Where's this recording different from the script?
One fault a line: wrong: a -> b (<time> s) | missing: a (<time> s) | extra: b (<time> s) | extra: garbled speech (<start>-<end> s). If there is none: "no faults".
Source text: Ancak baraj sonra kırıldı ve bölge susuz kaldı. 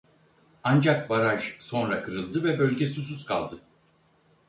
no faults